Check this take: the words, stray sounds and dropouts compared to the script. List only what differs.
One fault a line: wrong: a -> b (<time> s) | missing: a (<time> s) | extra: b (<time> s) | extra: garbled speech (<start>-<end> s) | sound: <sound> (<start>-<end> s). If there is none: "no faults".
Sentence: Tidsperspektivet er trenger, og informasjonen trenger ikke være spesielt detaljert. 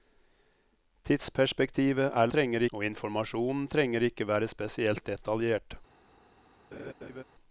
sound: laugh (6.7-7.2 s)